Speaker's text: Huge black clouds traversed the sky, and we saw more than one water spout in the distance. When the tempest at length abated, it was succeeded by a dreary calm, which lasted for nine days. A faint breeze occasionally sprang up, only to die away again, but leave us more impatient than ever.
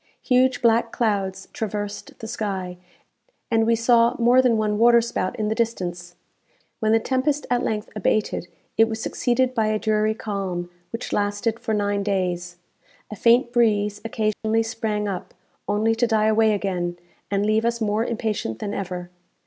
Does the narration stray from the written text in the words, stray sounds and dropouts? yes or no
yes